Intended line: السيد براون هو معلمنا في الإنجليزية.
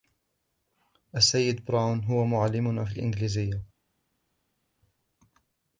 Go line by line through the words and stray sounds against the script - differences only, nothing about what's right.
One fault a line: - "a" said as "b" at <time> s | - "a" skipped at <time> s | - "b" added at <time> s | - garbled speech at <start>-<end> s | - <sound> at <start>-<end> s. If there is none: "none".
none